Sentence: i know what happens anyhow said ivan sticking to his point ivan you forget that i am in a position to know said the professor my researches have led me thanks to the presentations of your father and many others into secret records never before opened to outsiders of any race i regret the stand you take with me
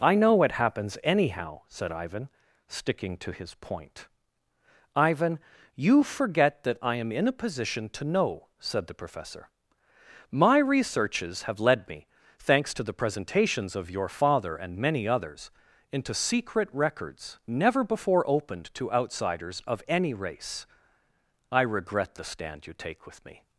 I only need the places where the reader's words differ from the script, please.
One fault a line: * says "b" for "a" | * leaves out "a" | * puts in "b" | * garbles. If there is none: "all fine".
all fine